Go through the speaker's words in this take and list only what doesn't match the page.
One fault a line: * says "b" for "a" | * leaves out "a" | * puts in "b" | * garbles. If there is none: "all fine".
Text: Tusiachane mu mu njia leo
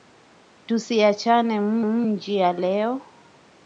all fine